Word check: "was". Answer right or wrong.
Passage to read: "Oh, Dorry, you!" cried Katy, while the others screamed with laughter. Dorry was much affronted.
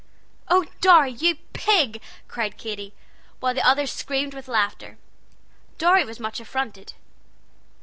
right